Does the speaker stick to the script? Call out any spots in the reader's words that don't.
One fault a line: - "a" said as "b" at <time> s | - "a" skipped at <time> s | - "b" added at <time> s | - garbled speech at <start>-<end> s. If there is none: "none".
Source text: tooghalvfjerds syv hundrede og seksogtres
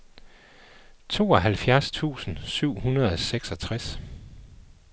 - "tusind" added at 1.9 s